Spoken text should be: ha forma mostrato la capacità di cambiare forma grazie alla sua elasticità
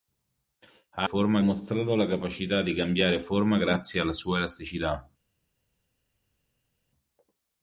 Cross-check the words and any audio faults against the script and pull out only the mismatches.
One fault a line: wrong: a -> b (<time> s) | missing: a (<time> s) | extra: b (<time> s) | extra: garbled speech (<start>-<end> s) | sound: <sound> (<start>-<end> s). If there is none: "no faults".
no faults